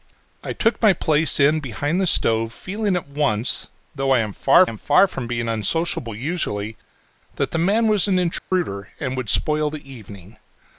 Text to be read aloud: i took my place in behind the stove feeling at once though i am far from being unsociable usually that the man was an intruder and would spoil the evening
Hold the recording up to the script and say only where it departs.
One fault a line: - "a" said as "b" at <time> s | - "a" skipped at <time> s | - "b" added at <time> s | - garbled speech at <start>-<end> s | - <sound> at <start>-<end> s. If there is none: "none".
- "am far" added at 4.7 s
- dropout at 8.4-8.5 s